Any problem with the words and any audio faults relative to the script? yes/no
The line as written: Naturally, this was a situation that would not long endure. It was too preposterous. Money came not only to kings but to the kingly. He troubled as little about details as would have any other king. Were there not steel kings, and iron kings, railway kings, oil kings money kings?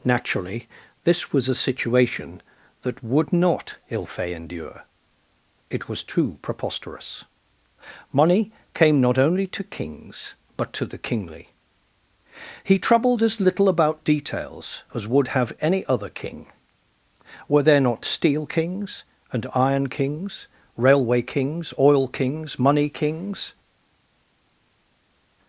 yes